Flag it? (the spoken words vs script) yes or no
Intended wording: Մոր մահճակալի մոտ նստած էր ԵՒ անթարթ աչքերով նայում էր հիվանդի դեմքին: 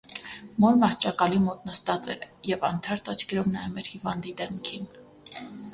no